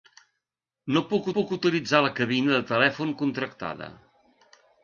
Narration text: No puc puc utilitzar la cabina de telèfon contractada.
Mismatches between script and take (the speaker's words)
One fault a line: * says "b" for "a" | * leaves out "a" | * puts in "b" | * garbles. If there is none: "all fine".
all fine